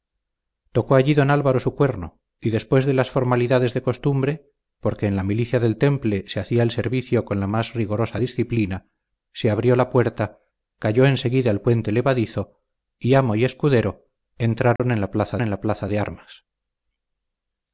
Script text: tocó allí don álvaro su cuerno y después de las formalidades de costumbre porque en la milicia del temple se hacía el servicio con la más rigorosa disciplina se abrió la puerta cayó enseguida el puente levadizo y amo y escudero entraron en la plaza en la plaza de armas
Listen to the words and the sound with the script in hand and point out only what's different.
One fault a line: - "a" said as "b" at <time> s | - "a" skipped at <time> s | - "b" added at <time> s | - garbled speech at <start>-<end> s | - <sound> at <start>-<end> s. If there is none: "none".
- dropout at 14.8-14.8 s